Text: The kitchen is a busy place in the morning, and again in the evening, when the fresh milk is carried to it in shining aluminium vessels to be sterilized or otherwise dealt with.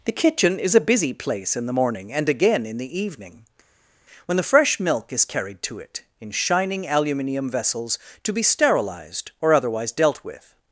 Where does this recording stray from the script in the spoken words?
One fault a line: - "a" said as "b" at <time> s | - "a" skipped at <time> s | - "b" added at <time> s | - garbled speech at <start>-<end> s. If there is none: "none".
none